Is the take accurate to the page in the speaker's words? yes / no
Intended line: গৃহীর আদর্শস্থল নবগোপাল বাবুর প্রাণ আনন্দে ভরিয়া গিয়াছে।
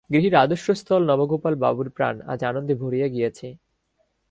no